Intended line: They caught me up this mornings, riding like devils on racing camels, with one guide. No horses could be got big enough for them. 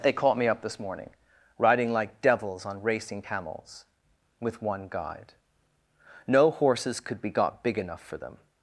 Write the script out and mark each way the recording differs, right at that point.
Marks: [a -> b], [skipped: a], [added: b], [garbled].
They caught me up this [mornings, -> morning] riding like devils on racing camels, with one guide. No horses could be got big enough for them.